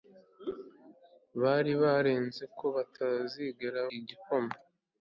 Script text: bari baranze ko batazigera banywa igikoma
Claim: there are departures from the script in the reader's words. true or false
true